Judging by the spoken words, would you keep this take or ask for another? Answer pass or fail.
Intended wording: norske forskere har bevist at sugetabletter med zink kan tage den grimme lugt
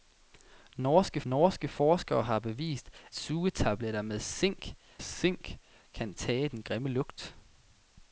fail